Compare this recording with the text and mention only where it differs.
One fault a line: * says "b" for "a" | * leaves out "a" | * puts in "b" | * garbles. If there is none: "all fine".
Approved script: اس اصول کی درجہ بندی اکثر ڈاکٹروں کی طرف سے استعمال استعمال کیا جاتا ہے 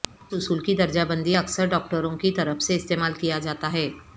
* leaves out "استعمال"